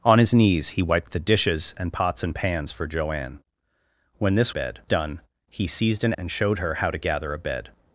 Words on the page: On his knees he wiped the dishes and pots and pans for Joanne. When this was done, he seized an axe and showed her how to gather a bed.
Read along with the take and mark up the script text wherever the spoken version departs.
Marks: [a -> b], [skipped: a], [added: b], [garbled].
On his knees he wiped the dishes and pots and pans for Joanne. When this [was -> bed] done, he seized an [skipped: axe] and showed her how to gather a bed.